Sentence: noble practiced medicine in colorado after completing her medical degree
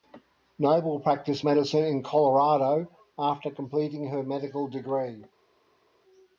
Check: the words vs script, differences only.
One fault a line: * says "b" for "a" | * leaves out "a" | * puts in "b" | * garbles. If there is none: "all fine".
all fine